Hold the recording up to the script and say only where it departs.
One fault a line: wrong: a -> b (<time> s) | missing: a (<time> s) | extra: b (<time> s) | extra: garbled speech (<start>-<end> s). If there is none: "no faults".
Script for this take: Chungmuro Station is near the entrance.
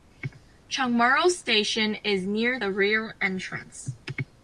extra: rear (2.7 s)